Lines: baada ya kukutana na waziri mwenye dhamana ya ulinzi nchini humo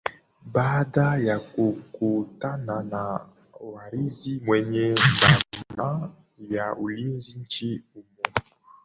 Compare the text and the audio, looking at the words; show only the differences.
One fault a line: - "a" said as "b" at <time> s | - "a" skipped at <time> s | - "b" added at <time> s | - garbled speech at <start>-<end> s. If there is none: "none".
none